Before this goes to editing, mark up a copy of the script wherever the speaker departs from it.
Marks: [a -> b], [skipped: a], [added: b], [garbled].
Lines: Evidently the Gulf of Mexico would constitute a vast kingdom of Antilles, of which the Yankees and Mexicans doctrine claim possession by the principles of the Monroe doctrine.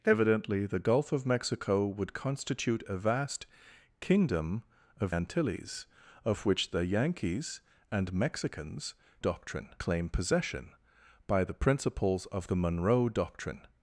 Evidently the Gulf of Mexico would constitute a vast kingdom of Antilles, of which the Yankees and Mexicans doctrine claim possession by the principles of the Monroe doctrine.